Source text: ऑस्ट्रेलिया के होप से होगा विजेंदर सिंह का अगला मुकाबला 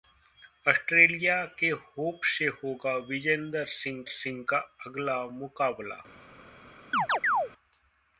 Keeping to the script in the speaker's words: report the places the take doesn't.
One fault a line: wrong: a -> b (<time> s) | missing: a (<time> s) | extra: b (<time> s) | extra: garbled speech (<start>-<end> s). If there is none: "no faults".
extra: सिंह (4.1 s)